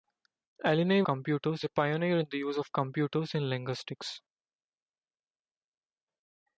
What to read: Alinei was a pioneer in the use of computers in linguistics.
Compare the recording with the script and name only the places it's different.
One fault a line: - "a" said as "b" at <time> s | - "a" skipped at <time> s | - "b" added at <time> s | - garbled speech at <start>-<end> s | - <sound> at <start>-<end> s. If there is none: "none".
- "was" said as "computers" at 1.0 s